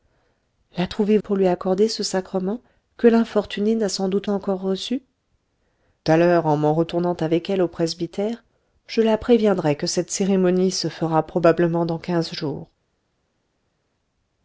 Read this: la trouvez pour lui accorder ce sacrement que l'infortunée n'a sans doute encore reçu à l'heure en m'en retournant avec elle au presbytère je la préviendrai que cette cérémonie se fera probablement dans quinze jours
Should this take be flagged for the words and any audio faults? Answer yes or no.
no